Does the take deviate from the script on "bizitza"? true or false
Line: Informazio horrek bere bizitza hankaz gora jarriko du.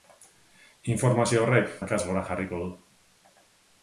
true